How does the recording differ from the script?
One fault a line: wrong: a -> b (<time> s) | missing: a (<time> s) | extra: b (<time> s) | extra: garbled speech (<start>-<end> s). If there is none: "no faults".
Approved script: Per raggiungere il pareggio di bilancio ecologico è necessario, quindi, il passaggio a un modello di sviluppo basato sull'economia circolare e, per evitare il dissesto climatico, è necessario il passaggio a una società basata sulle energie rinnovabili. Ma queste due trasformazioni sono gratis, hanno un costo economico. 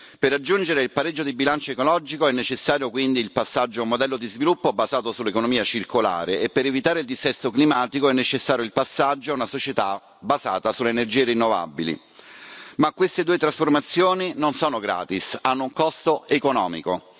extra: non (14.3 s)